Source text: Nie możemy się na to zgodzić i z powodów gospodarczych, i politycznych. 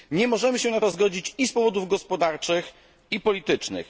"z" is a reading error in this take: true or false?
false